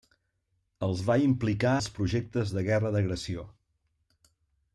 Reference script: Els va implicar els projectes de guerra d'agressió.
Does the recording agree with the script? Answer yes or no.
yes